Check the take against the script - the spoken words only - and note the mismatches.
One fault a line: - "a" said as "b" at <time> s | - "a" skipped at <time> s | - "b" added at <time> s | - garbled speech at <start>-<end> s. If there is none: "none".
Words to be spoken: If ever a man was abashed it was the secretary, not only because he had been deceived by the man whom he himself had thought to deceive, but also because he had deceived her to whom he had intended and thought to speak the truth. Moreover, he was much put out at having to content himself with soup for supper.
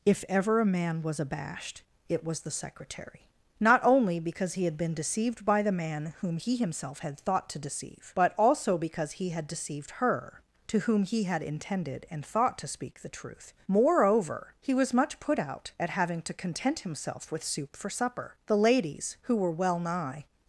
- "The ladies who were well nigh" added at 18.5 s